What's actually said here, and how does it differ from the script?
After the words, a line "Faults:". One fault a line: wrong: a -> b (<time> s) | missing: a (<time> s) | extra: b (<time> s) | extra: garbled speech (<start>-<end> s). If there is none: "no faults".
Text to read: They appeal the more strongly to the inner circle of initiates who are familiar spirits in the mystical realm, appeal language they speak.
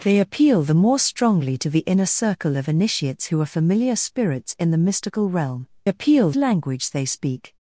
They appeal the more strongly to the inner circle of initiates who are familiar spirits in the mystical realm, appeal language they speak.
Faults:
no faults